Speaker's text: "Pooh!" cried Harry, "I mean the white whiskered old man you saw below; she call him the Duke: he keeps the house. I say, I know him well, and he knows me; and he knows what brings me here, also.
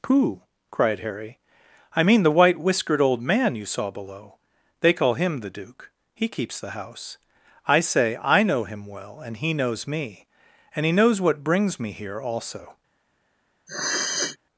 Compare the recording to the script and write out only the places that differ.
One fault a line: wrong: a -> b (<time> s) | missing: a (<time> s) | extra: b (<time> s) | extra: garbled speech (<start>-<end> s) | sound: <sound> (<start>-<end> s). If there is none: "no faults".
wrong: she -> they (4.8 s)
sound: sniff (13.7-14.4 s)